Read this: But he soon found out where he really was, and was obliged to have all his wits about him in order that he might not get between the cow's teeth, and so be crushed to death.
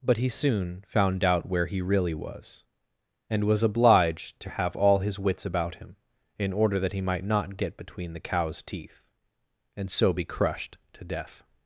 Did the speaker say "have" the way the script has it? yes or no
yes